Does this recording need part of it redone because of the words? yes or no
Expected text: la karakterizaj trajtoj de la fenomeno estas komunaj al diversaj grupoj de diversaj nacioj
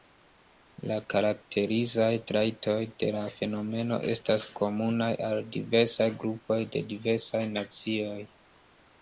no